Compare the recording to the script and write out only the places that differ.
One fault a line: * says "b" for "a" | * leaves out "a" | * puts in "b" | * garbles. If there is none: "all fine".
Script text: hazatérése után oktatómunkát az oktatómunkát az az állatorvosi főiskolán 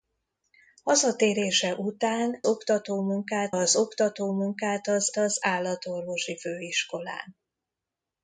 all fine